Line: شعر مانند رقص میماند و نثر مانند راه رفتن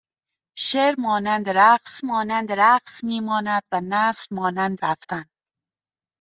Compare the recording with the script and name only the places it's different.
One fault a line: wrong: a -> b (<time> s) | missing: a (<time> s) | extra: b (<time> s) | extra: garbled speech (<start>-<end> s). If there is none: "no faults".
extra: مانند رقص (2.0 s)
missing: راه (4.8 s)